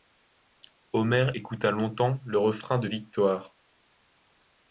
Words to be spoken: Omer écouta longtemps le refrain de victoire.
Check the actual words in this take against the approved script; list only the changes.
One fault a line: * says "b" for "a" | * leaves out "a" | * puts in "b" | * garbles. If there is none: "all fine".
all fine